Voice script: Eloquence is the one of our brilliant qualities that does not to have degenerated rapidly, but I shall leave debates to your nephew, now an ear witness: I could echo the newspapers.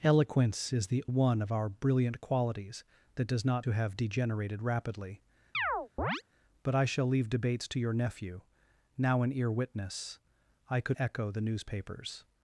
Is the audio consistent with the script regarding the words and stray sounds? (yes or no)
no